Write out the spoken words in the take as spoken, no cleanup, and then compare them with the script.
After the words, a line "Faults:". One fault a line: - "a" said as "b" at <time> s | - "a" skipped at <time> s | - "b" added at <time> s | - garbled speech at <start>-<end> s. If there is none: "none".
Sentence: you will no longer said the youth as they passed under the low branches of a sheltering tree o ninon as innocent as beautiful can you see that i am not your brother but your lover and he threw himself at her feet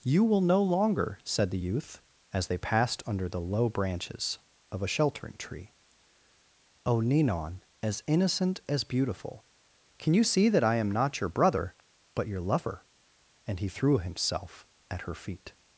you will no longer said the youth as they passed under the low branches of a sheltering tree o ninon as innocent as beautiful can you see that i am not your brother but your lover and he threw himself at her feet
Faults:
none